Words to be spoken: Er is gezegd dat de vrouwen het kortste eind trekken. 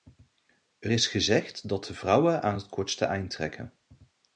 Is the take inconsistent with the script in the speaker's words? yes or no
yes